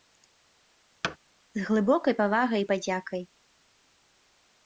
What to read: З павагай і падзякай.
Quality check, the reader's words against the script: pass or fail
fail